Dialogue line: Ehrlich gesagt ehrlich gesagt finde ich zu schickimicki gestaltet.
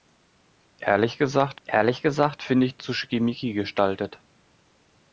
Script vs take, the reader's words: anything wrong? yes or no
no